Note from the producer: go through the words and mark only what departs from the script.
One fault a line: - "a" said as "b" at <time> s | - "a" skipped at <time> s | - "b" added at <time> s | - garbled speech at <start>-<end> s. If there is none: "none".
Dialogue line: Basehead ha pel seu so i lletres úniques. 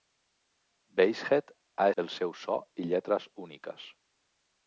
none